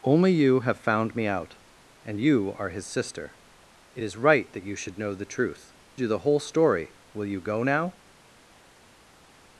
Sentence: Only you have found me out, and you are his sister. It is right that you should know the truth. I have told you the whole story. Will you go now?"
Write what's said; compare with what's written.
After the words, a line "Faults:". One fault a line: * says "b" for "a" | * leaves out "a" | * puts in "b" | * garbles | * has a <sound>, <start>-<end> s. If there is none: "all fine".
Only you have found me out, and you are his sister. It is right that you should know the truth. you the whole story. Will you go now?"
Faults:
* leaves out "I have told"